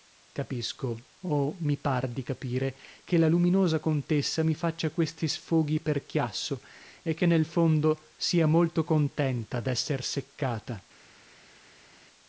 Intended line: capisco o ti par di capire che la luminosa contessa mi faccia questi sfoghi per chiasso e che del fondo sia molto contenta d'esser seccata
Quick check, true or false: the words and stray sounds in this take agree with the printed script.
false